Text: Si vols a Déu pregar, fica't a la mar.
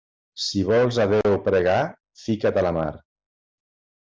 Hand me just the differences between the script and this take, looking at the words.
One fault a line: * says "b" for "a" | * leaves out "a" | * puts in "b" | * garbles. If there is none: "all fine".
all fine